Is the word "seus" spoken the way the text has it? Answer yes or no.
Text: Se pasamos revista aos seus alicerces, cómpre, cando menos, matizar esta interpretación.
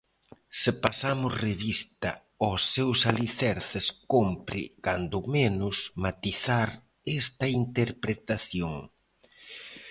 yes